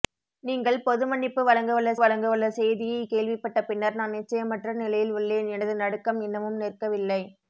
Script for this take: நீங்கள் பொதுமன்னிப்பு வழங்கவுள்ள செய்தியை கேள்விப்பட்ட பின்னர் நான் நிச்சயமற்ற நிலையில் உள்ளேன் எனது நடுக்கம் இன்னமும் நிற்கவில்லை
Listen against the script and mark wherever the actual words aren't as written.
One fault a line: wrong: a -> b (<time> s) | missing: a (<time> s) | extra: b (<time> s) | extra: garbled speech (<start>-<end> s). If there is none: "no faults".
extra: வழங்கவுள்ள (2.0 s)